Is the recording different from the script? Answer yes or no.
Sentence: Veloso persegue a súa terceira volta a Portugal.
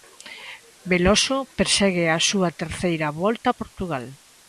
no